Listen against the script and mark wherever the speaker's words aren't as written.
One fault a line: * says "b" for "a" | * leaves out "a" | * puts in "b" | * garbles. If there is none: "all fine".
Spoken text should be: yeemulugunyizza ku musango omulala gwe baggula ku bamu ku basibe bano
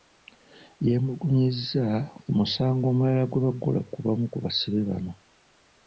all fine